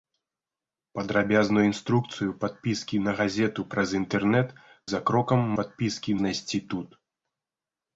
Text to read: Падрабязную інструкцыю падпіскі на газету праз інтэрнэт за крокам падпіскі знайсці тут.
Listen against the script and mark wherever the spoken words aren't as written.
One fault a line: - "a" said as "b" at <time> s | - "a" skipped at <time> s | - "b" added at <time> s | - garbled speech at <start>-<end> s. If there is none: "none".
none